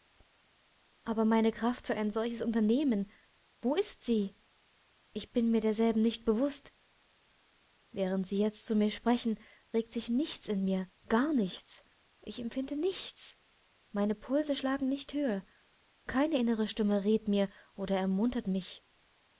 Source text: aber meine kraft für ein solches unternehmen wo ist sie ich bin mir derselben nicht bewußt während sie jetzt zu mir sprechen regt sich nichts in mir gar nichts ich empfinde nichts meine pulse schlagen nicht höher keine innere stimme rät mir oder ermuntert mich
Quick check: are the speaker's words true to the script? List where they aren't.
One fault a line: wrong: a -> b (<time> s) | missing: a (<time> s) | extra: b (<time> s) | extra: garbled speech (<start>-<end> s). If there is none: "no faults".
no faults